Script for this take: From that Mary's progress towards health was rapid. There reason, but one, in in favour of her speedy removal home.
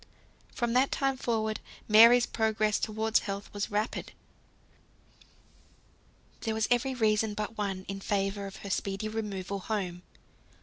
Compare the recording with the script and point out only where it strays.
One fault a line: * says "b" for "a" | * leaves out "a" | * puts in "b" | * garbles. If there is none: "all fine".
* puts in "time forward"
* puts in "was every"
* leaves out "in"